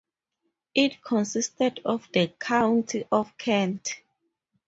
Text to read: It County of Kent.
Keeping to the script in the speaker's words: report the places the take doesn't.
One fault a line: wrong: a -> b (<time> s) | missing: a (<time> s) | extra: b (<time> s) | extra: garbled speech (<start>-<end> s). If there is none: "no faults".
extra: consisted of the (1.0 s)